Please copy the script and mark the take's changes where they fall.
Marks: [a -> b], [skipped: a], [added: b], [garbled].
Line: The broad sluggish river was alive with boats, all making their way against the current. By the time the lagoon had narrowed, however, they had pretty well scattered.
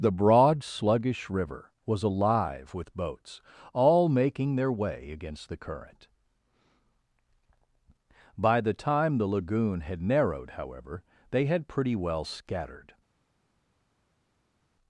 The broad sluggish river was alive with boats, all making their way against the current. By the time the lagoon had narrowed, however, they had pretty well scattered.